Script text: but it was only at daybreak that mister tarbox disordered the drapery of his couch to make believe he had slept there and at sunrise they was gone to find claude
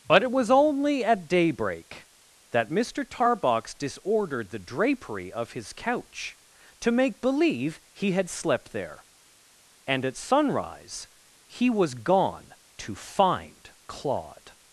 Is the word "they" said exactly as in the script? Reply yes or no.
no